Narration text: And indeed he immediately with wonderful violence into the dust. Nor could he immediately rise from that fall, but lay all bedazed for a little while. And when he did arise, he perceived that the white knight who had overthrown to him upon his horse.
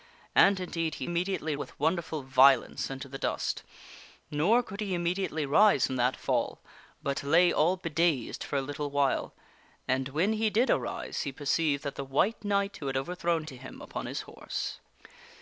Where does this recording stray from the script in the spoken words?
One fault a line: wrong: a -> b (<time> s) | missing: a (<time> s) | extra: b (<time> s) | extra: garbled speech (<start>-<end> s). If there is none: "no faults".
no faults